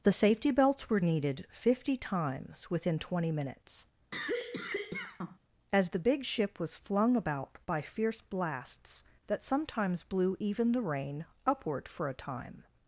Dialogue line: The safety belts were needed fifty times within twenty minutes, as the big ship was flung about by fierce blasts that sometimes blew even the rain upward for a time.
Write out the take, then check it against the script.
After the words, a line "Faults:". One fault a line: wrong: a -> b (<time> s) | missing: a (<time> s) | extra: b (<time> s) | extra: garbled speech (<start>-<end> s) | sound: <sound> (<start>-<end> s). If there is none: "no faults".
The safety belts were needed fifty times within twenty minutes, as the big ship was flung about by fierce blasts that sometimes blew even the rain upward for a time.
Faults:
sound: cough (4.1-5.4 s)